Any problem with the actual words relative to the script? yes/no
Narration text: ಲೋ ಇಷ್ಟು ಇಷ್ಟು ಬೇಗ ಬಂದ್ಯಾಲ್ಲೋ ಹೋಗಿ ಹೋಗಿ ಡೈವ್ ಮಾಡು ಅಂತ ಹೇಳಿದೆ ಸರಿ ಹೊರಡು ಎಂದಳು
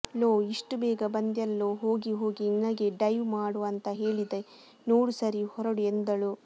yes